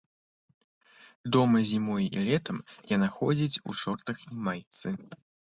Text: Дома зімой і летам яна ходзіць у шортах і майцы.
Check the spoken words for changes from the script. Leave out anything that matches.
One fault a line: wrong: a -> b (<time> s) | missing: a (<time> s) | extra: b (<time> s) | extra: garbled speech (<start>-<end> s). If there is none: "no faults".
no faults